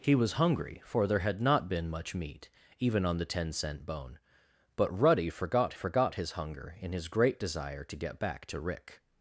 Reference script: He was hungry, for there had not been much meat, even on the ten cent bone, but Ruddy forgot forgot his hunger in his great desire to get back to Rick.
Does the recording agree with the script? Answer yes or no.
yes